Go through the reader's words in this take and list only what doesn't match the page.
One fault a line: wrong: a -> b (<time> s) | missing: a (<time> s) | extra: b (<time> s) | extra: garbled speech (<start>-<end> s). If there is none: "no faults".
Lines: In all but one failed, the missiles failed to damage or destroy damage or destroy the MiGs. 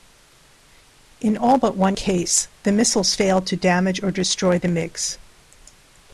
wrong: failed -> case (1.9 s)
missing: damage or destroy (4.6 s)